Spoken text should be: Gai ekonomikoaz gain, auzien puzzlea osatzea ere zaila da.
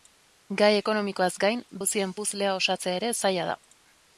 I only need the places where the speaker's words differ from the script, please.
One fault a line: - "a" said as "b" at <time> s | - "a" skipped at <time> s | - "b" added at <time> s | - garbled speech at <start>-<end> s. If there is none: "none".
none